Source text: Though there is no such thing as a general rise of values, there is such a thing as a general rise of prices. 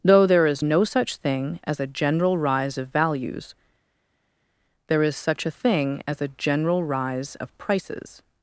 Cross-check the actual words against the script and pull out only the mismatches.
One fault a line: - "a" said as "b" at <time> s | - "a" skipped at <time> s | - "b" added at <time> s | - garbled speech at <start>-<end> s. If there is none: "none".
none